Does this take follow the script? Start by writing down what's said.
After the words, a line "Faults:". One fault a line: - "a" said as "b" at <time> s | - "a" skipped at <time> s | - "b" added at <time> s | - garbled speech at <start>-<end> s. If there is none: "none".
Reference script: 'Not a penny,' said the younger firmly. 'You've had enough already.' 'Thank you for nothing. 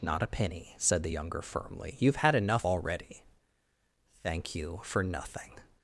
'Not a penny,' said the younger firmly. 'You've had enough already.' 'Thank you for nothing.
Faults:
none